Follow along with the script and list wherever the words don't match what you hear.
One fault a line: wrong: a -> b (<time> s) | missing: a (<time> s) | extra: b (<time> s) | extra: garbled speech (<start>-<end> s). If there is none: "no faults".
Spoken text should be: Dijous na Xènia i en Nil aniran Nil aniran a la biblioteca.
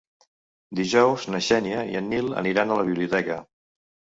missing: Nil aniran (2.7 s)